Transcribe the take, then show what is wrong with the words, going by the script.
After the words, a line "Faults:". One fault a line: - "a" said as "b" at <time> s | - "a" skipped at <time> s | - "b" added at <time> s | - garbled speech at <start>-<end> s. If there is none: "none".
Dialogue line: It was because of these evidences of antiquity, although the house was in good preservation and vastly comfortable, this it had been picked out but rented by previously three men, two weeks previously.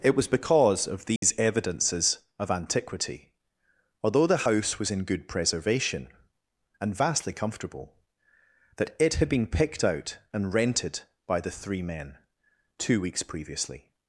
It was because of these evidences of antiquity, although the house was in good preservation and vastly comfortable, that it had been picked out and rented by the three men, two weeks previously.
Faults:
- "this" said as "that" at 8.8 s
- "but" said as "and" at 10.3 s
- "previously" said as "the" at 11.4 s